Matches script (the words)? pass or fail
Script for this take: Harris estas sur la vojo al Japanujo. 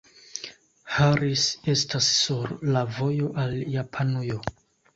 pass